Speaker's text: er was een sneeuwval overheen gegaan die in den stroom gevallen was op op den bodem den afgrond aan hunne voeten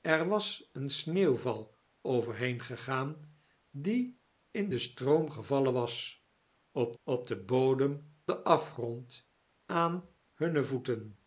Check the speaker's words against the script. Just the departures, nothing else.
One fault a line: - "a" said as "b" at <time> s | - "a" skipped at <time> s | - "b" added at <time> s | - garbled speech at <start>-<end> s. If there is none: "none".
none